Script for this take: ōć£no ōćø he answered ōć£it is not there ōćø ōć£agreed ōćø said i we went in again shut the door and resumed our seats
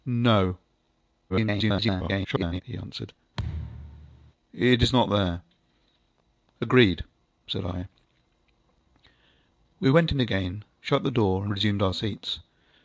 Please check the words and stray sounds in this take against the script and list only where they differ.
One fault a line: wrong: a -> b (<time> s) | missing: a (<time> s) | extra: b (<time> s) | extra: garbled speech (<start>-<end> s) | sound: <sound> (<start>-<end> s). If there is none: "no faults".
extra: garbled speech (1.3-2.6 s)
sound: thud (3.4-4.3 s)